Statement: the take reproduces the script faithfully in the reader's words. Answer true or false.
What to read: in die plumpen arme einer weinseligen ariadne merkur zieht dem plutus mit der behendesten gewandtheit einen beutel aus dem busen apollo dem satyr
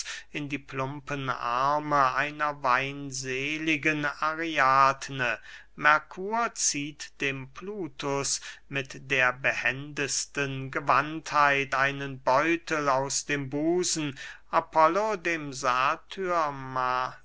true